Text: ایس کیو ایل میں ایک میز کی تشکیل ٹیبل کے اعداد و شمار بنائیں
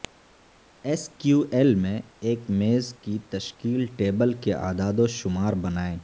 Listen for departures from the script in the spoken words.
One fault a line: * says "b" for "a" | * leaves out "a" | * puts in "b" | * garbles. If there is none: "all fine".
all fine